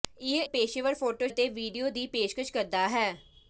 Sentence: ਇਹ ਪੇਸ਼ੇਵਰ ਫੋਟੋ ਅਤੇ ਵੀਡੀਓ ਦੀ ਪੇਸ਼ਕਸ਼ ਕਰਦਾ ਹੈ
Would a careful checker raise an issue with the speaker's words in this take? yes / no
no